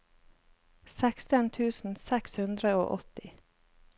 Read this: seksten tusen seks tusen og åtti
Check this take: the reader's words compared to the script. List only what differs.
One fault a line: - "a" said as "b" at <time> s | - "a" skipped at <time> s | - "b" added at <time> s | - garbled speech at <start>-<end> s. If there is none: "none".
- "tusen" said as "hundre" at 2.4 s